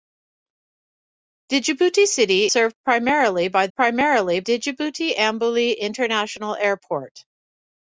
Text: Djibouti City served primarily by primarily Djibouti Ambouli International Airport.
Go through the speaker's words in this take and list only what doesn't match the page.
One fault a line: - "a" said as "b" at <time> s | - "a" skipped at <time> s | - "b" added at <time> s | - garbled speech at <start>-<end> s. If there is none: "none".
none